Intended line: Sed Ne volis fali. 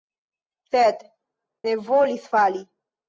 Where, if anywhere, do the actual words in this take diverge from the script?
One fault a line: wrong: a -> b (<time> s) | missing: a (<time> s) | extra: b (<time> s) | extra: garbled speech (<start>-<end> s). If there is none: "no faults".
no faults